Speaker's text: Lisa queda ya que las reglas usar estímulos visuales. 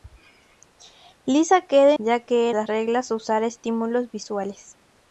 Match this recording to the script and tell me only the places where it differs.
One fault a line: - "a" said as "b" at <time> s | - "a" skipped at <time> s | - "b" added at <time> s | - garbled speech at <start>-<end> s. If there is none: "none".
none